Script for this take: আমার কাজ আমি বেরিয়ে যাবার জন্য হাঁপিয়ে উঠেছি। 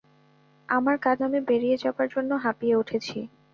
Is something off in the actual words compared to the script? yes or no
no